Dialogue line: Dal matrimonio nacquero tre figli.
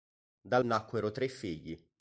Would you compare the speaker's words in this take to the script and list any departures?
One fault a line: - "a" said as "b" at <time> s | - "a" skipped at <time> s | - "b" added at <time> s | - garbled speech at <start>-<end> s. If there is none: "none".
- "matrimonio" skipped at 0.6 s